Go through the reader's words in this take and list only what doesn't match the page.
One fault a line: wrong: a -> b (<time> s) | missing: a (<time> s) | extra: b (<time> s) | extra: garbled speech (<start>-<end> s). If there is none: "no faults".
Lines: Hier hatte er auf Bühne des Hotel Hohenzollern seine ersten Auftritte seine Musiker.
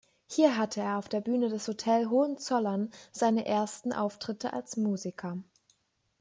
extra: der (1.1 s)
wrong: seine -> als (4.5 s)